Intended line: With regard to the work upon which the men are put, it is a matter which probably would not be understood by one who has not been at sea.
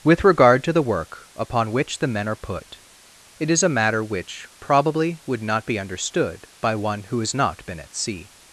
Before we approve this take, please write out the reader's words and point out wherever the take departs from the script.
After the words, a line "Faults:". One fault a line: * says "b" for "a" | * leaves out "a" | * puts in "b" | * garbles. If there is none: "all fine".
With regard to the work upon which the men are put, it is a matter which probably would not be understood by one who has not been at sea.
Faults:
all fine